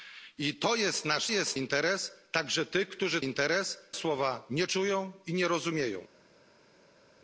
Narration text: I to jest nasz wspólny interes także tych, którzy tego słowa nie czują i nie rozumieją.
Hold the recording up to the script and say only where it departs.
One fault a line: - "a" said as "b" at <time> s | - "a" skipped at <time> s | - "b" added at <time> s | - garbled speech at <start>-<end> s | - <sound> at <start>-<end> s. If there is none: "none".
- "wspólny" said as "jest" at 1.3 s
- "tego" said as "interes" at 3.2 s